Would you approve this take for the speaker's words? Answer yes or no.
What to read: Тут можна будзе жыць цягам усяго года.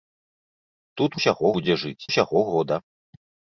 no